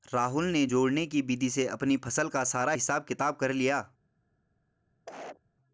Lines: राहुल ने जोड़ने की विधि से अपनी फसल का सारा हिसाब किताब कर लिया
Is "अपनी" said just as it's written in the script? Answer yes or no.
yes